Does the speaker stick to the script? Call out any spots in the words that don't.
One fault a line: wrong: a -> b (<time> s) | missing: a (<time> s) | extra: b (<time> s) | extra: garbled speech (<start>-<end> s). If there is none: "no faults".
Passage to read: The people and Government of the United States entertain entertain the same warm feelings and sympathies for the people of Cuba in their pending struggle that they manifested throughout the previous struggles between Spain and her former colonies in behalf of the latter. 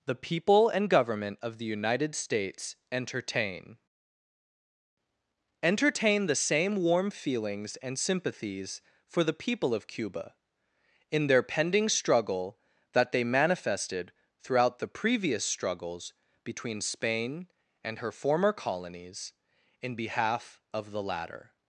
no faults